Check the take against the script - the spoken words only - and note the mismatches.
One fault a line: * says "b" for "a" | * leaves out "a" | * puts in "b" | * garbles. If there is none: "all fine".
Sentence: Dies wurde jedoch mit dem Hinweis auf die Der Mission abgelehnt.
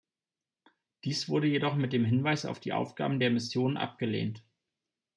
* puts in "Aufgaben"